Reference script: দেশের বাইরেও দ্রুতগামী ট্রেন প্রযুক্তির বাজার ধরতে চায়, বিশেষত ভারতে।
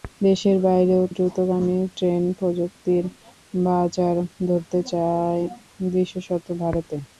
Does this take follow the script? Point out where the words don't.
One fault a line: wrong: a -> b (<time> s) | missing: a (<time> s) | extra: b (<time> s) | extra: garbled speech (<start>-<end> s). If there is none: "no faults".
no faults